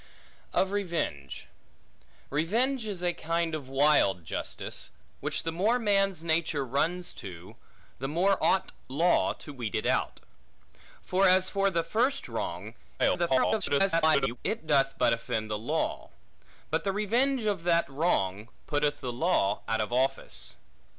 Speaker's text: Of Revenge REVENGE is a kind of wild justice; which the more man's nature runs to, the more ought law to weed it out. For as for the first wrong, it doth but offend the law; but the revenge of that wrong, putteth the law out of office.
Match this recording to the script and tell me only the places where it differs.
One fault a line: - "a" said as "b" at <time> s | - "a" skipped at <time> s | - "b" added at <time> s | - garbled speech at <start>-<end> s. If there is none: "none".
- garbled speech at 13.0-14.4 s